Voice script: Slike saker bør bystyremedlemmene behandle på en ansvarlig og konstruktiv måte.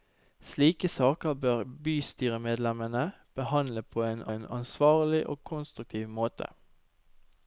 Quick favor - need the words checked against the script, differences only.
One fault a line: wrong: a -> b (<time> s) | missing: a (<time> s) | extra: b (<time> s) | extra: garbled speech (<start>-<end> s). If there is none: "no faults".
extra: en (4.3 s)